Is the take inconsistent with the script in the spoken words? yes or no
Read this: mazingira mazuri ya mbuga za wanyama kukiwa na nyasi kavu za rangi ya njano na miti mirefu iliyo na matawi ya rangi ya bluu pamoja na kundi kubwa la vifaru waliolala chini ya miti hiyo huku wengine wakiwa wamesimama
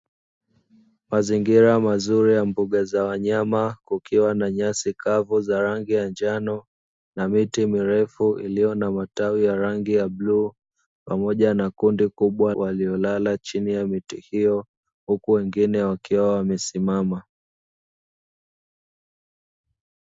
yes